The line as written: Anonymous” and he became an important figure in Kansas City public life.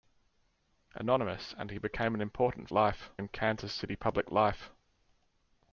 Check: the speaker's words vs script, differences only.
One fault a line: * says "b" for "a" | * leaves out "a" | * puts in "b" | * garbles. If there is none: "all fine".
* says "life" for "figure"